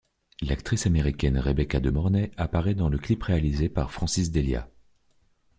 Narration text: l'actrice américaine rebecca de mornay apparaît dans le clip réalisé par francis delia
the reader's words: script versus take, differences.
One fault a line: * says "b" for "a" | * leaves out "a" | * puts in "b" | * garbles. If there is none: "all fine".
all fine